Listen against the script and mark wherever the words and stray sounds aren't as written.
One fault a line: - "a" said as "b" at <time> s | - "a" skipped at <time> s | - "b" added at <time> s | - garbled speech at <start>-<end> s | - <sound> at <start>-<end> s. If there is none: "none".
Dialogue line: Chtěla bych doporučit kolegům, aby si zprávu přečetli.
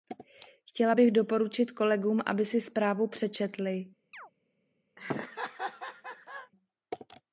- chirp at 4.1-4.3 s
- laugh at 5.0-6.5 s